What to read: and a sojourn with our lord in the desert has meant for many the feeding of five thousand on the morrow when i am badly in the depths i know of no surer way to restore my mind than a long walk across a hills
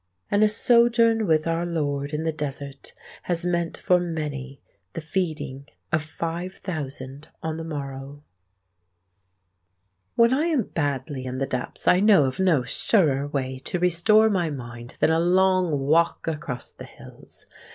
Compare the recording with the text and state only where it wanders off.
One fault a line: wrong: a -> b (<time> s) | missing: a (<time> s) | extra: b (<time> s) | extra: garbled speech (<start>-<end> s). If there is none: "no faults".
wrong: a -> the (16.7 s)